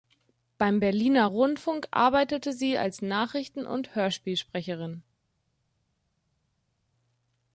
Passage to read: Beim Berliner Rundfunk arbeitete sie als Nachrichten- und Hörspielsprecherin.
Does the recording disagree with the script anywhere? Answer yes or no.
no